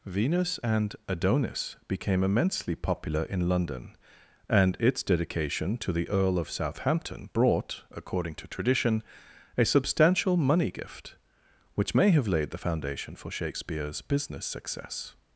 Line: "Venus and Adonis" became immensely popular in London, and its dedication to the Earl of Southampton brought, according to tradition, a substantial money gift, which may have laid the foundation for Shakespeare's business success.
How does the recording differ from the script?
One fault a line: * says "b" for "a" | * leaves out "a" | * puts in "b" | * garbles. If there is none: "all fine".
all fine